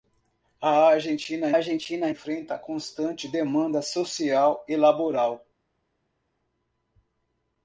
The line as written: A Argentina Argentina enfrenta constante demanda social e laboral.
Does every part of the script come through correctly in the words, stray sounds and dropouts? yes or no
yes